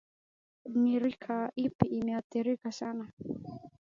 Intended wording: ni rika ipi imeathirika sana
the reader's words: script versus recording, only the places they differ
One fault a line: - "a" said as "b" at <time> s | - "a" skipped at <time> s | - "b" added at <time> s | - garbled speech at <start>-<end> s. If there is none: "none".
none